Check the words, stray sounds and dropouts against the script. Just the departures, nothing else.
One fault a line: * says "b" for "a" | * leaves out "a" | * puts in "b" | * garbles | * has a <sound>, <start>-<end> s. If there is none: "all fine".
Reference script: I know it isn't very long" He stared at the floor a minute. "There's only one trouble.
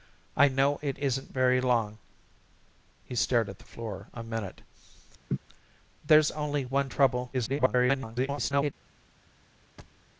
* has a laugh, 5.3-5.4 s
* garbles
* has a thud, 9.8-10.0 s